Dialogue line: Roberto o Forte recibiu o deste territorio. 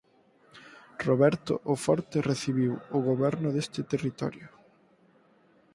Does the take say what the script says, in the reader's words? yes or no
no